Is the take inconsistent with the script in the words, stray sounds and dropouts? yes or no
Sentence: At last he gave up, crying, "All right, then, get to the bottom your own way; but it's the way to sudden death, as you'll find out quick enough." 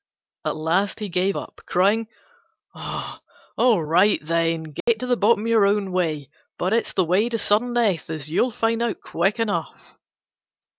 yes